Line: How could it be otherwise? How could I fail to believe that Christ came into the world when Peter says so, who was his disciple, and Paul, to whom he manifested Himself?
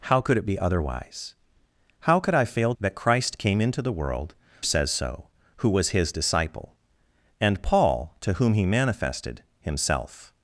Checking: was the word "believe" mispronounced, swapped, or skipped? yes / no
yes